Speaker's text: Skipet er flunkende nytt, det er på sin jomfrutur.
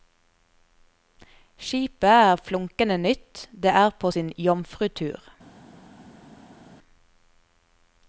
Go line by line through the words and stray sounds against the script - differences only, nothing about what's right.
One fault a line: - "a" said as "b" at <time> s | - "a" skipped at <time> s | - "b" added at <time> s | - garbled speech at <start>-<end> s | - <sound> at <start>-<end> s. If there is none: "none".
none